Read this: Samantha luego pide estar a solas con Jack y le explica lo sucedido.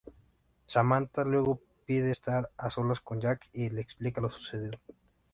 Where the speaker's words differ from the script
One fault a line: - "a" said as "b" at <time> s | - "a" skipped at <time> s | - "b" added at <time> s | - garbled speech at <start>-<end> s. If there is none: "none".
none